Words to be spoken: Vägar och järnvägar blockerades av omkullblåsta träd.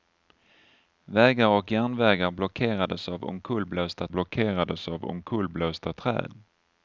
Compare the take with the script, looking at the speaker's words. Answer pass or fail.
fail